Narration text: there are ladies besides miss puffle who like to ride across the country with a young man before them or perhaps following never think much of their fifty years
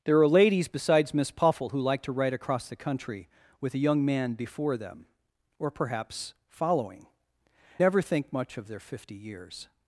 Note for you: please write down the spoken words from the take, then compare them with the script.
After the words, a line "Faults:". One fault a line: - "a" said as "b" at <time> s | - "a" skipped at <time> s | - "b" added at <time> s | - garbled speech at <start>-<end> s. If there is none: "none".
there are ladies besides miss puffle who like to ride across the country with a young man before them or perhaps following never think much of their fifty years
Faults:
none